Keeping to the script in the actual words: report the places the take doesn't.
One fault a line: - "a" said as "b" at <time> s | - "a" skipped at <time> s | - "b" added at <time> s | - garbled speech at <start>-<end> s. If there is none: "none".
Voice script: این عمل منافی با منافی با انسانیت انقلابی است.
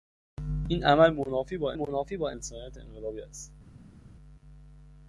none